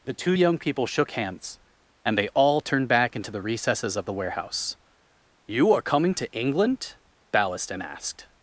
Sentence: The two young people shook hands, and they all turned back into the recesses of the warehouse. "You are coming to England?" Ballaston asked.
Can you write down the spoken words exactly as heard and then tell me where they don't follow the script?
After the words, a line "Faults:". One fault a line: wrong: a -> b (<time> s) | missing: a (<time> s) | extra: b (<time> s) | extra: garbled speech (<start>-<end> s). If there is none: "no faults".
The two young people shook hands, and they all turned back into the recesses of the warehouse. "You are coming to England?" Ballaston asked.
Faults:
no faults